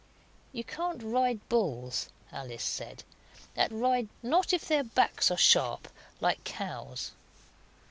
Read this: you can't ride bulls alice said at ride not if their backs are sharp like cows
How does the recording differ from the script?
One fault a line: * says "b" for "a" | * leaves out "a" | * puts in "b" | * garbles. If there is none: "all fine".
all fine